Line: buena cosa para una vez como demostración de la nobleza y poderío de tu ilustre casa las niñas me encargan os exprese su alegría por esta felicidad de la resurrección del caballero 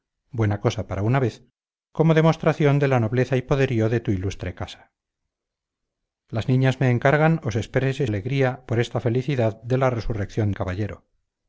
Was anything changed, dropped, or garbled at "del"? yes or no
yes